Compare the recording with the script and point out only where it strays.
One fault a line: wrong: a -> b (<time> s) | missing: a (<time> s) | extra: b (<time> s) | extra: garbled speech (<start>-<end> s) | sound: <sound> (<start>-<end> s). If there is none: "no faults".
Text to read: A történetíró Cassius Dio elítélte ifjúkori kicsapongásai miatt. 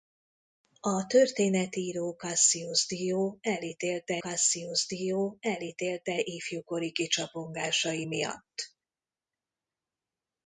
extra: Cassius Dio elítélte (4.2 s)